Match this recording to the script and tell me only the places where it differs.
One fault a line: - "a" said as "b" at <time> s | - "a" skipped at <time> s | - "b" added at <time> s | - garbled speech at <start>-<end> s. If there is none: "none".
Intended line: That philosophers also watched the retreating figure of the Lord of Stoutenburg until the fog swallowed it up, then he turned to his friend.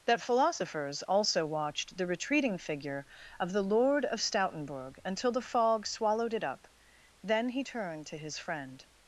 none